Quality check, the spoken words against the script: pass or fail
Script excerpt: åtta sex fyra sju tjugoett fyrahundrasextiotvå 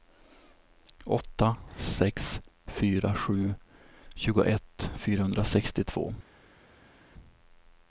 pass